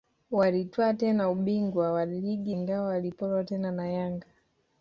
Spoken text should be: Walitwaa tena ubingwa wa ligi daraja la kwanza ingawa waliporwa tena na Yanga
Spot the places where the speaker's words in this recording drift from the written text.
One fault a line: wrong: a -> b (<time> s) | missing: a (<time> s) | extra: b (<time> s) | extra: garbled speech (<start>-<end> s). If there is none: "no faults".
missing: daraja la kwanza (2.5 s)